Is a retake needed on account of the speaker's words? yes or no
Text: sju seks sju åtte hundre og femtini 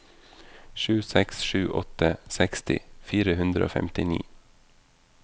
yes